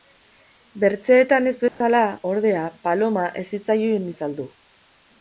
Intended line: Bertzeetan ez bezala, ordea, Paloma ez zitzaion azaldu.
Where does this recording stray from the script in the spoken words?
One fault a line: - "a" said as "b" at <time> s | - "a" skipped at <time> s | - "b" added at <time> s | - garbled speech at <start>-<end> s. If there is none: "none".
none